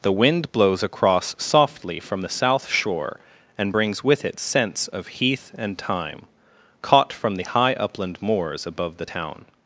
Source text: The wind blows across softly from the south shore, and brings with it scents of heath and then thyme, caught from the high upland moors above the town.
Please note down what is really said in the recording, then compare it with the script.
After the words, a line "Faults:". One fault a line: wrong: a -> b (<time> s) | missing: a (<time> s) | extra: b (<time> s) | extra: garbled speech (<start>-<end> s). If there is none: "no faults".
The wind blows across softly from the south shore, and brings with it scents of heath and thyme, caught from the high upland moors above the town.
Faults:
missing: then (5.8 s)